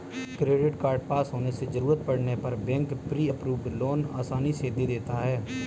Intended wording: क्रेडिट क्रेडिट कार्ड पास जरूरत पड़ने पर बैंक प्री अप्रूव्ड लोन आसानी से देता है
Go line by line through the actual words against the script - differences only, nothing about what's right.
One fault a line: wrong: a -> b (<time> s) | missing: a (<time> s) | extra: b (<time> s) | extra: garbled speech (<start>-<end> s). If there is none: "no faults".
missing: क्रेडिट (0.8 s)
extra: होने से (1.3 s)
extra: दे (4.7 s)